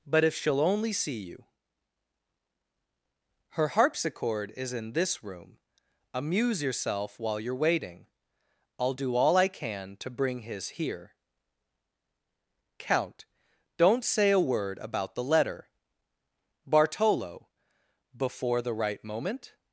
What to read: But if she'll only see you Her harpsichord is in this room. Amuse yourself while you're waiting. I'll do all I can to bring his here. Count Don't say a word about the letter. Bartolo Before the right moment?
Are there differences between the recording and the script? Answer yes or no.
no